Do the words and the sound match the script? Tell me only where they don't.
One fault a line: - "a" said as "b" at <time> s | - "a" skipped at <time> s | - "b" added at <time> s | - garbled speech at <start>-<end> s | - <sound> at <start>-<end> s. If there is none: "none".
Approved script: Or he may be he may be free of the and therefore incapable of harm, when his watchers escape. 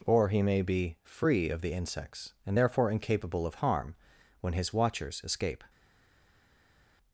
- "he may be" skipped at 1.0 s
- "insects" added at 1.7 s